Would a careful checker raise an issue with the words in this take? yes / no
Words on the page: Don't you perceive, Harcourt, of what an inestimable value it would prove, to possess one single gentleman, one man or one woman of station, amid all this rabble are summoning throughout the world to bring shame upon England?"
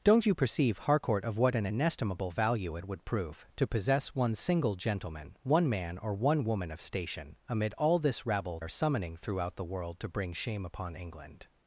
no